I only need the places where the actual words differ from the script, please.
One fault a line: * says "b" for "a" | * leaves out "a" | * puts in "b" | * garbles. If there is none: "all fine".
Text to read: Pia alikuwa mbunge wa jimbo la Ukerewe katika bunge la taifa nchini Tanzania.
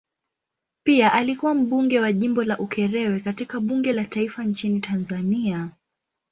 all fine